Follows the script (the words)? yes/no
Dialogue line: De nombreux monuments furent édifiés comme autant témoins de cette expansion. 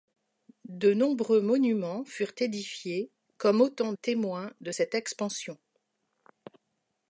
yes